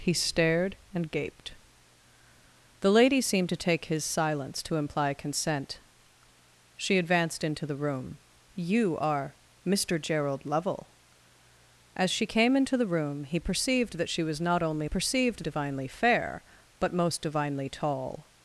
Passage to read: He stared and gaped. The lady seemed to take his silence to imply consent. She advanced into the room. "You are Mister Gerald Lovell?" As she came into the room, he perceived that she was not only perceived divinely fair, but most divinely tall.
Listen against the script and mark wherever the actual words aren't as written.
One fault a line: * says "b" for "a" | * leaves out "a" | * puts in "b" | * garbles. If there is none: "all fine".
all fine